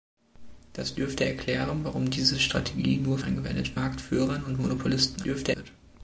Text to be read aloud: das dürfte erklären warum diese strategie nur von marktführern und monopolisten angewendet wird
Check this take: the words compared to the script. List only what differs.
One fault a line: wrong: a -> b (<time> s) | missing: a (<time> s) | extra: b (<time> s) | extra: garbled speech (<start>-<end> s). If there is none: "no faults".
wrong: von -> angewendet (3.2 s)
wrong: angewendet -> dürfte (5.2 s)